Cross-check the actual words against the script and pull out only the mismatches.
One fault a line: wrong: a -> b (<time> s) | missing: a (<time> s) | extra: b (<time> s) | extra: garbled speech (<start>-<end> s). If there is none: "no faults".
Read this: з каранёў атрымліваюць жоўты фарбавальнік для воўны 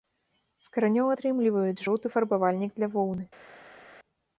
no faults